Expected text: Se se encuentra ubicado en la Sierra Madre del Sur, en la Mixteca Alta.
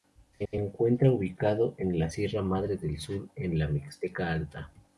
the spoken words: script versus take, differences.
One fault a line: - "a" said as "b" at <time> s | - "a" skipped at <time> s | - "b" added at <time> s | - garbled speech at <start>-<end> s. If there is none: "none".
none